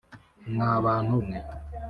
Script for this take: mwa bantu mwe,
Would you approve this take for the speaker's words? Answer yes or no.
yes